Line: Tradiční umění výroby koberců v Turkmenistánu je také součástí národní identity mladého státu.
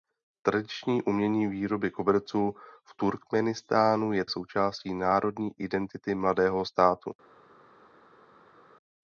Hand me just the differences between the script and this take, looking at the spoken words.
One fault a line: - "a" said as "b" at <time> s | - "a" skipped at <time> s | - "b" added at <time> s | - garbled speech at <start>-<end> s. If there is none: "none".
- "také" skipped at 4.2 s